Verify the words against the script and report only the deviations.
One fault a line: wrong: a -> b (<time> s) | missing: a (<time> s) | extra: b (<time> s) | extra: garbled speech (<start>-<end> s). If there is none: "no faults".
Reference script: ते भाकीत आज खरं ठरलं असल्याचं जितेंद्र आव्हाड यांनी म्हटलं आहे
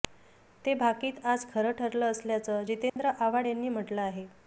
no faults